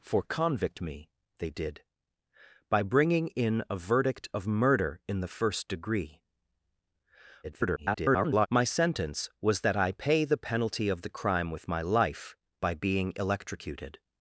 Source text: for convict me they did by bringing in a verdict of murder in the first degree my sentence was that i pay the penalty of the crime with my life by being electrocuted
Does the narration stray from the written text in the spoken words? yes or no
yes